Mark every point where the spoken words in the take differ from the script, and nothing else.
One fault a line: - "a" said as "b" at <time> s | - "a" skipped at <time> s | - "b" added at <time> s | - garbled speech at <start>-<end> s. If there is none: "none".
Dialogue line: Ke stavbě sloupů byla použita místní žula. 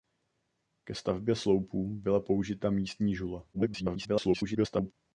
- garbled speech at 3.5-4.9 s